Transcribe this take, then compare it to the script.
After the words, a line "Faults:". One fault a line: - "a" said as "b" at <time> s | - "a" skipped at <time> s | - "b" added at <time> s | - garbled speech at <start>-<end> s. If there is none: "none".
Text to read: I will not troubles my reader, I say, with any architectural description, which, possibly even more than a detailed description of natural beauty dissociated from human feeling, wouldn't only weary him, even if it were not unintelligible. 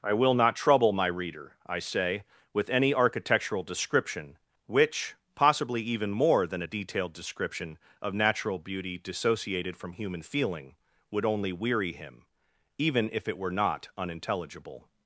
I will not trouble my reader, I say, with any architectural description, which, possibly even more than a detailed description of natural beauty dissociated from human feeling, would only weary him, even if it were not unintelligible.
Faults:
- "troubles" said as "trouble" at 0.6 s
- "wouldn't" said as "would" at 11.1 s